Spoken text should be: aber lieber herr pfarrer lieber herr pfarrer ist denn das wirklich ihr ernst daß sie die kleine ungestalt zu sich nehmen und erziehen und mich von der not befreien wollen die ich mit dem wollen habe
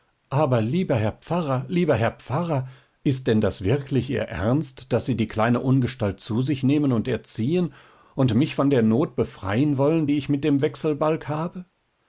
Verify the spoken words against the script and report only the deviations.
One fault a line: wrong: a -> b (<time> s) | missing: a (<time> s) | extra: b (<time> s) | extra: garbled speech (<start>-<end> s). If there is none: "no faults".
wrong: wollen -> wechselbalg (10.6 s)